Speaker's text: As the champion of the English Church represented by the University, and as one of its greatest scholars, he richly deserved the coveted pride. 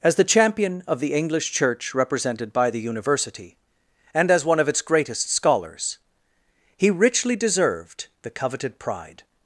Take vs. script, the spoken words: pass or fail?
pass